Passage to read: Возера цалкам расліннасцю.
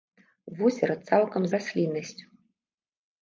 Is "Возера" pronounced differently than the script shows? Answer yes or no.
no